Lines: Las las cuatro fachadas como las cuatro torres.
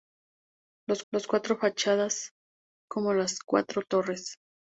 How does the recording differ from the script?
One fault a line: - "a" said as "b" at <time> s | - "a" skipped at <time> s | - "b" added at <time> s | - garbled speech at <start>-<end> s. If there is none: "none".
none